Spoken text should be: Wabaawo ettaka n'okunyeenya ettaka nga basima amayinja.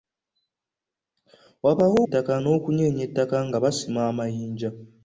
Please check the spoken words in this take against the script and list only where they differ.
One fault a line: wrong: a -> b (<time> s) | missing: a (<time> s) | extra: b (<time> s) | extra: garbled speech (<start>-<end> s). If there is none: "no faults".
no faults